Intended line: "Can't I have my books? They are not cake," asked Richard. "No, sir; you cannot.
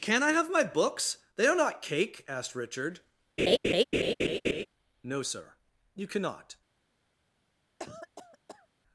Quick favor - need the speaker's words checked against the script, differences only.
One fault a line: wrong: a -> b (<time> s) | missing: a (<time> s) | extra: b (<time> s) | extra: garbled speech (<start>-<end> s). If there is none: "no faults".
wrong: Can't -> Can (0.0 s)